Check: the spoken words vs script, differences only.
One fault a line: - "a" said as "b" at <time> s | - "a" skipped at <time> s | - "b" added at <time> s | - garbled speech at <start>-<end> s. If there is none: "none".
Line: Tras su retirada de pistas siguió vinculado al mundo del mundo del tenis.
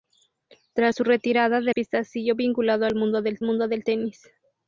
none